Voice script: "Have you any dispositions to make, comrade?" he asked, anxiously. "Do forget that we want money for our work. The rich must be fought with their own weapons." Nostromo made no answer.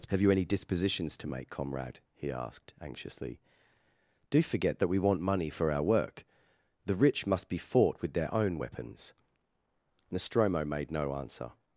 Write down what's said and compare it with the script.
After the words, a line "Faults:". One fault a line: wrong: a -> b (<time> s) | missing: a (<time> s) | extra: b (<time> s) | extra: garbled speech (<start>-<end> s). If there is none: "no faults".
"Have you any dispositions to make, comrade?" he asked, anxiously. "Do forget that we want money for our work. The rich must be fought with their own weapons." Nostromo made no answer.
Faults:
no faults